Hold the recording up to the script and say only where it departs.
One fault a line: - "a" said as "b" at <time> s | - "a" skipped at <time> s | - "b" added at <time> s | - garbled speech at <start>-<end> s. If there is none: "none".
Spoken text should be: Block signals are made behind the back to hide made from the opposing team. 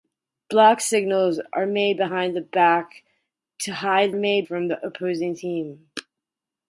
none